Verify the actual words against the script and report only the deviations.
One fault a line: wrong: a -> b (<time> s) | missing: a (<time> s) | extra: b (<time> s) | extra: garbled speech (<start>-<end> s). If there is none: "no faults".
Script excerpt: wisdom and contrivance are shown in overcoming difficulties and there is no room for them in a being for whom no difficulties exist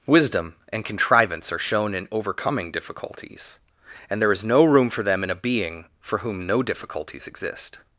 no faults